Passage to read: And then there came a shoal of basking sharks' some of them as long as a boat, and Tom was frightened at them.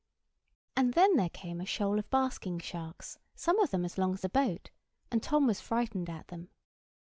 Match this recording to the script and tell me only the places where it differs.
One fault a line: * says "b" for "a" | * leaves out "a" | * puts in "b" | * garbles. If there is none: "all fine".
all fine